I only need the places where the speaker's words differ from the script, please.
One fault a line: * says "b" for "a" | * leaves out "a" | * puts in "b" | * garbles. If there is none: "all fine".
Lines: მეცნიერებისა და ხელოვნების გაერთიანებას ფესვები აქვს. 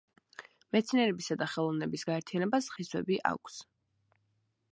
all fine